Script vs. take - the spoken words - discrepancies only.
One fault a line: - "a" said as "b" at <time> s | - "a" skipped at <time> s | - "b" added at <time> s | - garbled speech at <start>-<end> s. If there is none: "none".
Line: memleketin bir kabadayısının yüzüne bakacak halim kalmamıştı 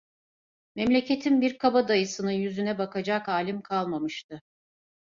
none